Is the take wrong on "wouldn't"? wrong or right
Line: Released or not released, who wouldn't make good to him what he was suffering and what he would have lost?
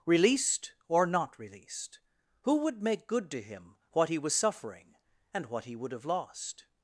wrong